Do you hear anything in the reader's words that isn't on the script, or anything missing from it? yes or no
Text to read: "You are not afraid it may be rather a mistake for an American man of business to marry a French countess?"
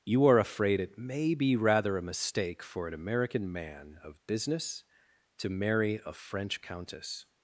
yes